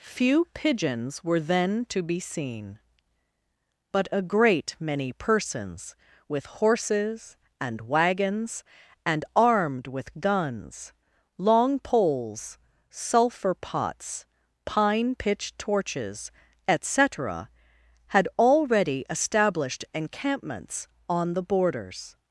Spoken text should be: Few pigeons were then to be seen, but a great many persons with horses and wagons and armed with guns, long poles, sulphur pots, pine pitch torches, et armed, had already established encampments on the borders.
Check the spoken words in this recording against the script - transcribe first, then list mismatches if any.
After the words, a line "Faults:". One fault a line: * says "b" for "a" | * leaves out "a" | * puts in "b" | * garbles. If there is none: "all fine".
Few pigeons were then to be seen, but a great many persons with horses and wagons and armed with guns, long poles, sulphur pots, pine pitch torches, et cetera, had already established encampments on the borders.
Faults:
* says "cetera" for "armed"